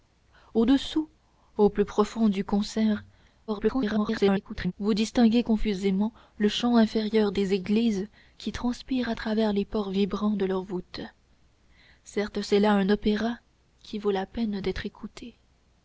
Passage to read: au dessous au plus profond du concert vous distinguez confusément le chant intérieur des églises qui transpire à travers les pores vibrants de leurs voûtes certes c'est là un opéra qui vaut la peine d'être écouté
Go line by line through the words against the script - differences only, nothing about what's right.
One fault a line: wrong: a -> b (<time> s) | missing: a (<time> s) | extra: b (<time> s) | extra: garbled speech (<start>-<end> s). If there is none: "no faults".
extra: garbled speech (3.5-4.7 s)